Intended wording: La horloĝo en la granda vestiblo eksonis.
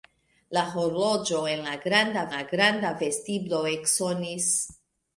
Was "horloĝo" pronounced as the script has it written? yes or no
yes